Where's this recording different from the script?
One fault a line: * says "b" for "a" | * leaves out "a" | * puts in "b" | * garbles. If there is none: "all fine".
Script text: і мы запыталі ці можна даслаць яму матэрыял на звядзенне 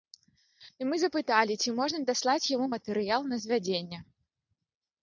all fine